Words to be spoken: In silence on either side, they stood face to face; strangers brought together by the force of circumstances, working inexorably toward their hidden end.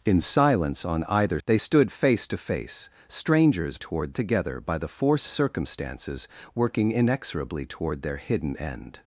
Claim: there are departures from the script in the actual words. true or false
true